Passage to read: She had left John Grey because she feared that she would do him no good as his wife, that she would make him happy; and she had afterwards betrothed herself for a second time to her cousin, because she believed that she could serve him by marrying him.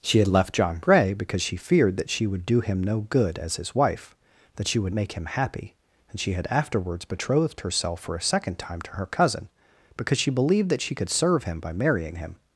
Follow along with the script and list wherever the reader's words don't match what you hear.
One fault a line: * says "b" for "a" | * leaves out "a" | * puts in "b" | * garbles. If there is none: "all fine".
all fine